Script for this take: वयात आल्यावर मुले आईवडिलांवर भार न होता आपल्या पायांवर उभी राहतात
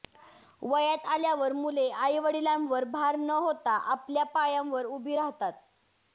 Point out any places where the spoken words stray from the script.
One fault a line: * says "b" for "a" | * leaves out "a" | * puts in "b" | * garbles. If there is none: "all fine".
all fine